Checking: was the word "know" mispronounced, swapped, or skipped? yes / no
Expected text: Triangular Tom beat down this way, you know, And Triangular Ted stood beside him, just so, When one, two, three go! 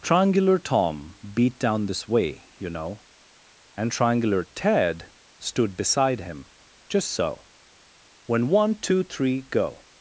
no